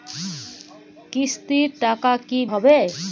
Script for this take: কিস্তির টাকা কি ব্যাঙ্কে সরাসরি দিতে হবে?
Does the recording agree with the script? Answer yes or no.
no